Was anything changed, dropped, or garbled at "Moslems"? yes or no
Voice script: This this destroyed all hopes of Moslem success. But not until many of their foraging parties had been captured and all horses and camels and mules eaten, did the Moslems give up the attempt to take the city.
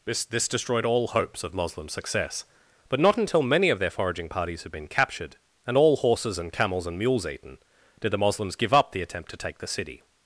no